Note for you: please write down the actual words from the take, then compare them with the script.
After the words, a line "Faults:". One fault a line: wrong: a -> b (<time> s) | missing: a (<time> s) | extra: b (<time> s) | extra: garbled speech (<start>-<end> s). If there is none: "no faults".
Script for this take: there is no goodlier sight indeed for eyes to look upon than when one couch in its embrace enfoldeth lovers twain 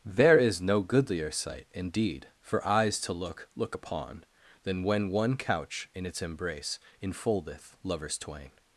there is no goodlier sight indeed for eyes to look look upon than when one couch in its embrace enfoldeth lovers twain
Faults:
extra: look (3.5 s)